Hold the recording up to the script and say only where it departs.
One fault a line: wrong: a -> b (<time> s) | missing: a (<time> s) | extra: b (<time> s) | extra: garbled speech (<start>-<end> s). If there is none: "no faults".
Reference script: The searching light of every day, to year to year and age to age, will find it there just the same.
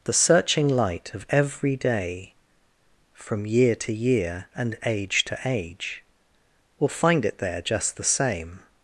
wrong: to -> from (3.1 s)